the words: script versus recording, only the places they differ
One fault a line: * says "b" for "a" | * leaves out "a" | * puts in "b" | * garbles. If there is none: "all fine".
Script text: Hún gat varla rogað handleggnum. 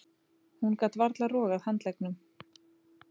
all fine